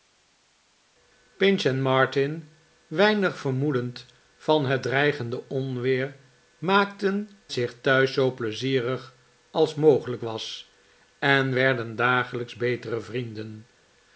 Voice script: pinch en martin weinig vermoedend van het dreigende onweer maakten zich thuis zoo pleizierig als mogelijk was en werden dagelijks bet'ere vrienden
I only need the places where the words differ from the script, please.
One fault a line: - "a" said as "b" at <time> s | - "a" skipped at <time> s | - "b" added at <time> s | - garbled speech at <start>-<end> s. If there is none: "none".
none